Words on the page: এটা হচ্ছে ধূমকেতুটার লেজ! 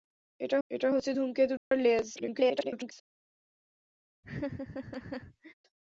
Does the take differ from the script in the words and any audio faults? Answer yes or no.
yes